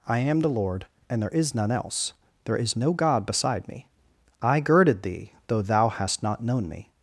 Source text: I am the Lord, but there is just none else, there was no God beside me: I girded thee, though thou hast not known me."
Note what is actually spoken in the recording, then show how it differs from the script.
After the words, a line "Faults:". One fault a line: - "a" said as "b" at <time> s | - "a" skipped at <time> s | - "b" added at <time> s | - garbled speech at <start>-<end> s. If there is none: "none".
I am the Lord, and there is none else, there is no God beside me: I girded thee, though thou hast not known me."
Faults:
- "but" said as "and" at 1.1 s
- "just" skipped at 1.5 s
- "was" said as "is" at 2.6 s